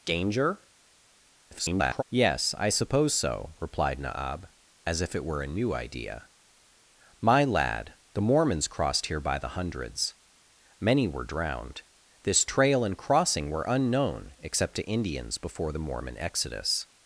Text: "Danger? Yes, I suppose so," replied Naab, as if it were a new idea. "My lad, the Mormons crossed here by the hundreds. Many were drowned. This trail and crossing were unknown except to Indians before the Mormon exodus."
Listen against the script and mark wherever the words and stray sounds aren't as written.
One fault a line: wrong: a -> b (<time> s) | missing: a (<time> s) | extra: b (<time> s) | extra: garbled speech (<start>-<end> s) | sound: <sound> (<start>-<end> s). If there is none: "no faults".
extra: garbled speech (1.5-2.0 s)